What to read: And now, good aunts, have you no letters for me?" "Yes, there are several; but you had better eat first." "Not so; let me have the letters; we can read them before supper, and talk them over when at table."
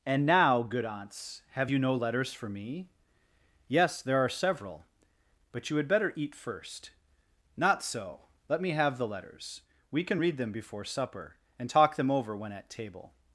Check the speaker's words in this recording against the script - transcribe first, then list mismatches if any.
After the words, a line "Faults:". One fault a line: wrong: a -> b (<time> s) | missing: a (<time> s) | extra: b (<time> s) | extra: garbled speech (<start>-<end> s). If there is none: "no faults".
And now, good aunts, have you no letters for me?" "Yes, there are several; but you had better eat first." "Not so; let me have the letters; we can read them before supper, and talk them over when at table."
Faults:
no faults